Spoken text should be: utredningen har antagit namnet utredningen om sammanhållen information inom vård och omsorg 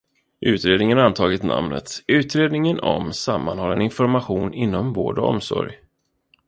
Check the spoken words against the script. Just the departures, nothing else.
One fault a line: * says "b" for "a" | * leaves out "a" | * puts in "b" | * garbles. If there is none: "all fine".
all fine